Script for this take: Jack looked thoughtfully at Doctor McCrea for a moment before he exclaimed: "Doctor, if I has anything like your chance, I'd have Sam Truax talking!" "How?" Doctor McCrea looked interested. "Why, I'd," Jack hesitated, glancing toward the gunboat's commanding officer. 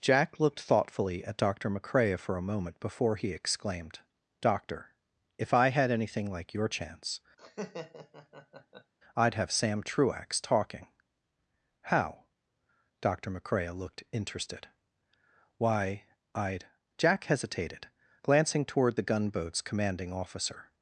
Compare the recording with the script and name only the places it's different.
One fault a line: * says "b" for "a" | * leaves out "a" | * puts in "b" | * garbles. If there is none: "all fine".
* says "had" for "has"